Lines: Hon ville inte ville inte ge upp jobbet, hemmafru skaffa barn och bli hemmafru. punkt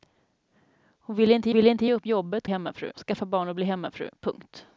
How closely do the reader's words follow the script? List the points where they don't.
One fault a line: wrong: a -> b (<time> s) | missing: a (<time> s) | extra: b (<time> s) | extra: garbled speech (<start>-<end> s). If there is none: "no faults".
no faults